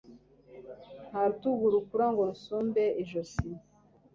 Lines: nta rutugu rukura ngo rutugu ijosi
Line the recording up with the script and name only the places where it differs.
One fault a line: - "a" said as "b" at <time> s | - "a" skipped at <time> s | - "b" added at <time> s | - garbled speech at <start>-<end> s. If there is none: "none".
- "rutugu" said as "rusumbe" at 2.3 s